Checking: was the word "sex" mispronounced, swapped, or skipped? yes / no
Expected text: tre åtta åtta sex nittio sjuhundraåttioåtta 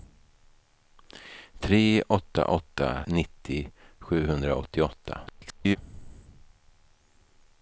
yes